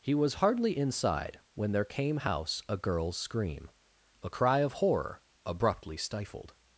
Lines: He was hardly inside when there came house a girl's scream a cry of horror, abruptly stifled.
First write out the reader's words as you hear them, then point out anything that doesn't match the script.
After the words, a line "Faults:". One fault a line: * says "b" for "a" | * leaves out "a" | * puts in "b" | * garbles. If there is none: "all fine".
He was hardly inside when there came house a girl's scream a cry of horror, abruptly stifled.
Faults:
all fine